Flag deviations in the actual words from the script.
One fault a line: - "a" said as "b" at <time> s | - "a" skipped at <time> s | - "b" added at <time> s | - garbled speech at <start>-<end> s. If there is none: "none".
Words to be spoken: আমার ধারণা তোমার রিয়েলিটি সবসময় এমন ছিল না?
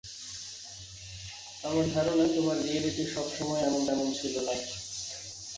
- "এমন" added at 3.9 s